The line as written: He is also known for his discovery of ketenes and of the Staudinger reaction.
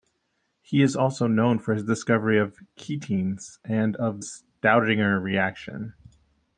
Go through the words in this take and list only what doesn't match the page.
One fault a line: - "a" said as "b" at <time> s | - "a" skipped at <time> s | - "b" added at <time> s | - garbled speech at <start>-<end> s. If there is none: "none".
- "the" skipped at 4.2 s